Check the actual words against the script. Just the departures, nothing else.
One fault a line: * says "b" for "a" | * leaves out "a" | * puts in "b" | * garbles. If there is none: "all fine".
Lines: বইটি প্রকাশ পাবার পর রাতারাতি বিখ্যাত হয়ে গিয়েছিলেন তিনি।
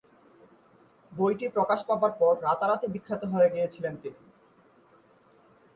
all fine